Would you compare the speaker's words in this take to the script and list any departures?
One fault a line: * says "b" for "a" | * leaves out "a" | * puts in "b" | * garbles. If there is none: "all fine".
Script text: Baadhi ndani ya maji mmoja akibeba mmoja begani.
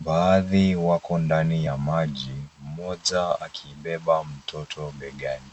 * puts in "wako"
* says "mtoto" for "mmoja"